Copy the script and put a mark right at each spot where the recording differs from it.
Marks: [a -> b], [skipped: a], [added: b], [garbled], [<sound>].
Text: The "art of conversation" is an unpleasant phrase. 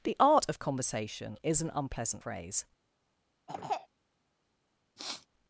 The "art of conversation" is an unpleasant phrase. [throat clearing] [sniff]